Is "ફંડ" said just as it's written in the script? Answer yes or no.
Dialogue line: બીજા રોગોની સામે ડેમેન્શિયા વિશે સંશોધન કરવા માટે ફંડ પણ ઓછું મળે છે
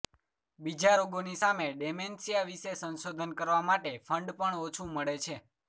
yes